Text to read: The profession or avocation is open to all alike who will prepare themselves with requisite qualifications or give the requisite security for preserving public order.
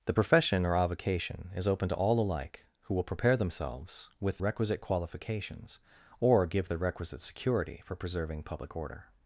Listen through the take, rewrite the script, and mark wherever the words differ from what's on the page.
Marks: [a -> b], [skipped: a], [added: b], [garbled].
The profession or avocation is open to all alike who will prepare themselves with requisite qualifications or give the requisite security for preserving public order.